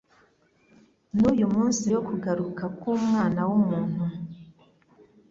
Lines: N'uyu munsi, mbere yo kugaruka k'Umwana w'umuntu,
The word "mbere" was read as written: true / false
false